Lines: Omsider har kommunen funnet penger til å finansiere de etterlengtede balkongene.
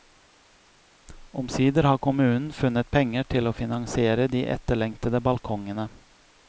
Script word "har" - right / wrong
right